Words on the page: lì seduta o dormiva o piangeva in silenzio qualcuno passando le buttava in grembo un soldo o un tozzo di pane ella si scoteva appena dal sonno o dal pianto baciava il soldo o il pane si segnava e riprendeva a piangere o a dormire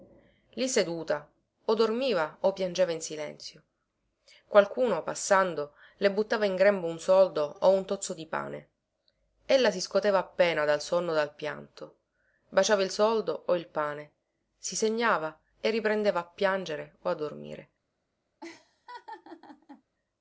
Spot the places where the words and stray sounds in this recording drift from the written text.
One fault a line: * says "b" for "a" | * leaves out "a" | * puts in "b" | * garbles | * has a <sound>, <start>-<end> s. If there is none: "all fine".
* has a laugh, 18.4-19.8 s